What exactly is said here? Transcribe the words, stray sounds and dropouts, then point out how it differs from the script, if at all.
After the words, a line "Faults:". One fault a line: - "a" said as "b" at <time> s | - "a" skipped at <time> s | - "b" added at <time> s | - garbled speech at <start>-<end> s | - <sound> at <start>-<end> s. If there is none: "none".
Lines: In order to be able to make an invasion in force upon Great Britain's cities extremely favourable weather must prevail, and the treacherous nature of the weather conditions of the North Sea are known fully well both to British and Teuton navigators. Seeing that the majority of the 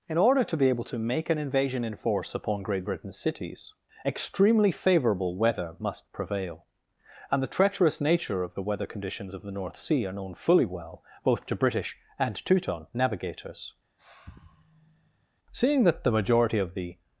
In order to be able to make an invasion in force upon Great Britain's cities extremely favourable weather must prevail, and the treacherous nature of the weather conditions of the North Sea are known fully well both to British and Teuton navigators. Seeing that the majority of the
Faults:
- sigh at 14.0-15.3 s